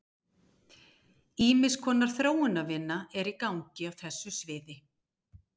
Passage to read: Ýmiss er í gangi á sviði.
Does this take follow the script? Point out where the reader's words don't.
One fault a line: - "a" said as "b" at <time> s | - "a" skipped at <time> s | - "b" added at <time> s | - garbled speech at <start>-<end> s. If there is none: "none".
- "konar þróunarvinna" added at 1.8 s
- "þessu" added at 4.0 s